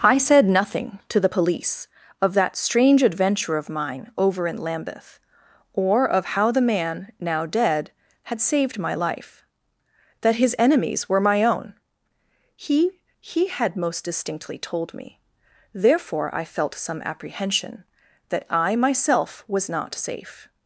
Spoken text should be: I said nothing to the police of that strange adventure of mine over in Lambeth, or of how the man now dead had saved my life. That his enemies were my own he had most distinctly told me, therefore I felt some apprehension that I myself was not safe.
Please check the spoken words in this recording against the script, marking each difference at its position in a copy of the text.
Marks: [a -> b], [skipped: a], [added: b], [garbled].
I said nothing to the police of that strange adventure of mine over in Lambeth, or of how the man now dead had saved my life. That his enemies were my own he [added: he] had most distinctly told me, therefore I felt some apprehension that I myself was not safe.